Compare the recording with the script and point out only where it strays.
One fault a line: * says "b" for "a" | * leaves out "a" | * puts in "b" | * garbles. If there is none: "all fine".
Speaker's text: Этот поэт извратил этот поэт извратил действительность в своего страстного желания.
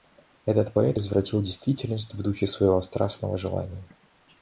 * leaves out "этот поэт извратил"
* puts in "духе"